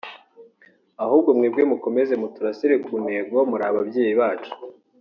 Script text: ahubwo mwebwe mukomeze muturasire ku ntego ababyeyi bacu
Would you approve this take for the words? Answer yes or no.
no